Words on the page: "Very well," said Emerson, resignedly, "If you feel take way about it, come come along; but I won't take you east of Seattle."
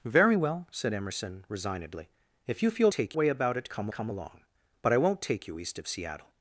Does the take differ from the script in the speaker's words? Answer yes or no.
no